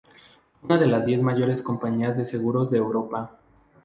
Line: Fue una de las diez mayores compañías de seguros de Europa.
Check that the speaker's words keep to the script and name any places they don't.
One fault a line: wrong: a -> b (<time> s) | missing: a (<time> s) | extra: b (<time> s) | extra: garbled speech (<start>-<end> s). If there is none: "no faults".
no faults